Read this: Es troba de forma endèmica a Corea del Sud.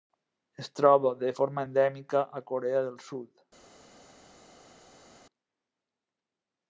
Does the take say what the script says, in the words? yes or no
yes